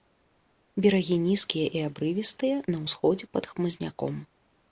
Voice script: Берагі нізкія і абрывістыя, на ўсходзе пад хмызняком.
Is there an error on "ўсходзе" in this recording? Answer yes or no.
no